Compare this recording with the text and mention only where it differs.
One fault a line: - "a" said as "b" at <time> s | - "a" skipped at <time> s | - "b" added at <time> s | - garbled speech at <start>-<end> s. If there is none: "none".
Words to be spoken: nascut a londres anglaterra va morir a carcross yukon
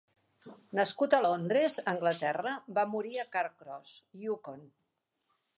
none